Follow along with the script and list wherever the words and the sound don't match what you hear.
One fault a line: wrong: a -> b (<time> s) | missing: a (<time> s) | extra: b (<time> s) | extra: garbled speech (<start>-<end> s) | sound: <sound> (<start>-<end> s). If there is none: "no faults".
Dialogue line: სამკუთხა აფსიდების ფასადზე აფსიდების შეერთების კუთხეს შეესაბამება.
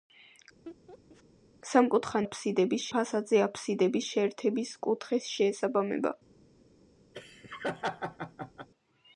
sound: laugh (0.7-1.2 s)
sound: laugh (7.1-8.7 s)